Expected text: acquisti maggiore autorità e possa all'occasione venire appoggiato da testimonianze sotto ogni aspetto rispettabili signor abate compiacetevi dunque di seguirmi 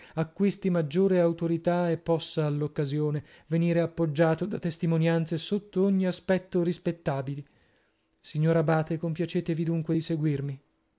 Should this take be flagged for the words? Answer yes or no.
no